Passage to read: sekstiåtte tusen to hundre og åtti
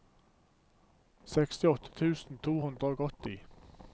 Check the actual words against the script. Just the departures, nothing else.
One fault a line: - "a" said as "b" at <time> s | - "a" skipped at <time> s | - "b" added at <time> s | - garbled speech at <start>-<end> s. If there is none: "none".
none